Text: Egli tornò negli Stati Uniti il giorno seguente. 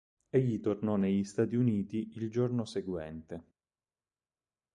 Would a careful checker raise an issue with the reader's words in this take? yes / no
no